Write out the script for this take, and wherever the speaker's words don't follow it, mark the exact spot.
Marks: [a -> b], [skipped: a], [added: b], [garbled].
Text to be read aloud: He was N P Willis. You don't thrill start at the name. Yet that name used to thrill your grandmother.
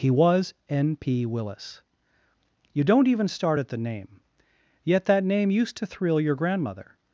He was N P Willis. You don't [thrill -> even] start at the name. Yet that name used to thrill your grandmother.